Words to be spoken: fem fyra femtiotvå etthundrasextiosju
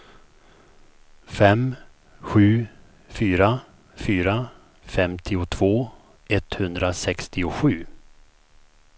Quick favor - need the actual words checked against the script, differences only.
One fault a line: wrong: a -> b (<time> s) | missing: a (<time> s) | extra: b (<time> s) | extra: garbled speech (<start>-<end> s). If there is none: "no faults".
extra: sju fyra (2.2 s)